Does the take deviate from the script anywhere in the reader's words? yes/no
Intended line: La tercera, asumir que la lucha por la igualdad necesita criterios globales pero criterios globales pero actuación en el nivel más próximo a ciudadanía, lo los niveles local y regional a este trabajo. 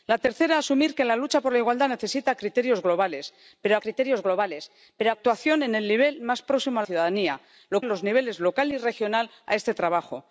no